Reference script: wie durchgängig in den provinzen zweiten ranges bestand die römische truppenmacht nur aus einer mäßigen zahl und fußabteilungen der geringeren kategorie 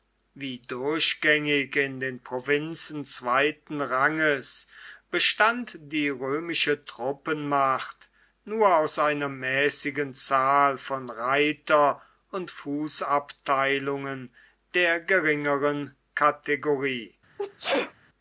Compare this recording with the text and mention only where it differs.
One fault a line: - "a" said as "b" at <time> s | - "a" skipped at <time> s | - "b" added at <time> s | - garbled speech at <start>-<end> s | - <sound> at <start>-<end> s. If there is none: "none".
- "von reiter" added at 10.8 s
- sneeze at 17.4-17.9 s